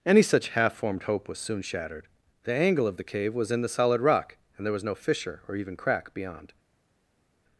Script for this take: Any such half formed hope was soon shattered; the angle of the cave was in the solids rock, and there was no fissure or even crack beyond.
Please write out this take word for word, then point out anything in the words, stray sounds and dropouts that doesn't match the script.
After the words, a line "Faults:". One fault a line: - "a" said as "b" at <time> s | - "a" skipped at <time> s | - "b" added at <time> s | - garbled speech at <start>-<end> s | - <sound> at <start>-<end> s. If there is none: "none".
Any such half formed hope was soon shattered; the angle of the cave was in the solid rock, and there was no fissure or even crack beyond.
Faults:
- "solids" said as "solid" at 3.7 s